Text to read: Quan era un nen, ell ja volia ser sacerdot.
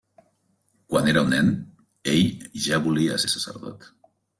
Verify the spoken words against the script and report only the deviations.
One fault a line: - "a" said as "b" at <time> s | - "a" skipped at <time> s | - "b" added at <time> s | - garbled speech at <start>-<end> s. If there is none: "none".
none